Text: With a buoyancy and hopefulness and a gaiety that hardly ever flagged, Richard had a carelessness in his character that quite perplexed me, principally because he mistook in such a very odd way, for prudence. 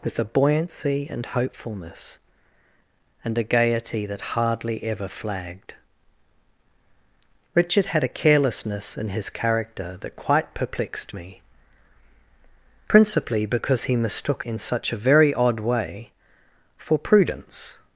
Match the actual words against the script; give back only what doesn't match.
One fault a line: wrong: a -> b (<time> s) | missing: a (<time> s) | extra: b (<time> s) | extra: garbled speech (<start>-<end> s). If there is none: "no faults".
no faults